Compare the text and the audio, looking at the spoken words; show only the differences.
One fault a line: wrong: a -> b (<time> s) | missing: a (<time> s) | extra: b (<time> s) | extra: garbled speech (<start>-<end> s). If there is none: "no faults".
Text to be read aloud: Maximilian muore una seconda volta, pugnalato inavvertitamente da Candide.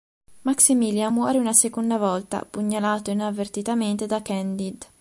no faults